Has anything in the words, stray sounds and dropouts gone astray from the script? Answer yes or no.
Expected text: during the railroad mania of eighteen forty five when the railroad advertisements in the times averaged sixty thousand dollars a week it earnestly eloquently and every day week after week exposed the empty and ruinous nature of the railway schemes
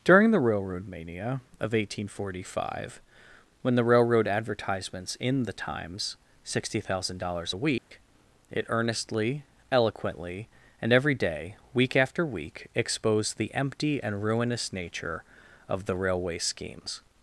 yes